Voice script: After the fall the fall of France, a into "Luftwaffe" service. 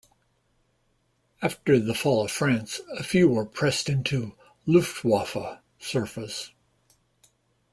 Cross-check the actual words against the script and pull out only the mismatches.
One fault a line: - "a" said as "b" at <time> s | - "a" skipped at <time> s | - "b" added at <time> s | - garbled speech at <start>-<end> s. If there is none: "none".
- "the fall" skipped at 2.2 s
- "few were pressed" added at 3.0 s